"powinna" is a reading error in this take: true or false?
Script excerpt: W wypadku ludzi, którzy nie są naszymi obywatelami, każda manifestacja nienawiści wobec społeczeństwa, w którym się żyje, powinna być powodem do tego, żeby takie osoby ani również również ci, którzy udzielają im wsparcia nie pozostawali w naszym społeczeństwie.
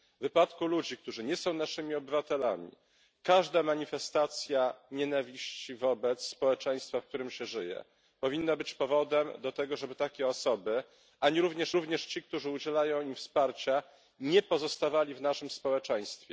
false